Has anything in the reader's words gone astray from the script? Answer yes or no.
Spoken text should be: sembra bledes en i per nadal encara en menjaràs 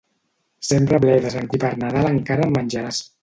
no